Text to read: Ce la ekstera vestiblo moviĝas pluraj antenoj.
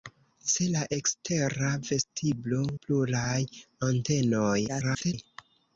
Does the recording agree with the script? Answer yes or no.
no